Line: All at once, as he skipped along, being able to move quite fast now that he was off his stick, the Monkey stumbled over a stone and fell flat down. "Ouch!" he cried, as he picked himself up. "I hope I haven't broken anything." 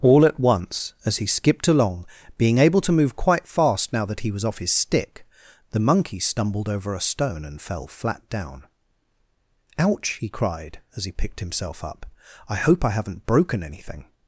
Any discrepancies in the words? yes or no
no